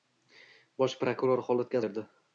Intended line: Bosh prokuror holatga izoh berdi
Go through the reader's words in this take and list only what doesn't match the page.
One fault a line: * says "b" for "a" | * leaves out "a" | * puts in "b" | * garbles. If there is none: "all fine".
* leaves out "izoh"